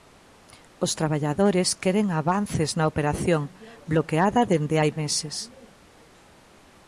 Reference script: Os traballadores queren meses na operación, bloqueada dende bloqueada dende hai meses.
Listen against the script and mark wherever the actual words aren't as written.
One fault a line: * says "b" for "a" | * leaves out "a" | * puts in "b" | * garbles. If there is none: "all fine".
* says "avances" for "meses"
* leaves out "bloqueada dende"